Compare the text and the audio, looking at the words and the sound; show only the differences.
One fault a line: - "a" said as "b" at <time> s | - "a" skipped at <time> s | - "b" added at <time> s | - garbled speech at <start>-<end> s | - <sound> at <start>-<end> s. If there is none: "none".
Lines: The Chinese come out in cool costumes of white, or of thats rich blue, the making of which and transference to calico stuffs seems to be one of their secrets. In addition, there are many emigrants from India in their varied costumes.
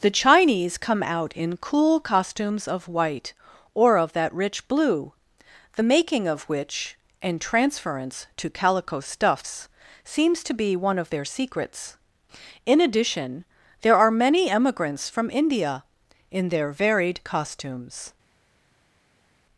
- "thats" said as "that" at 4.1 s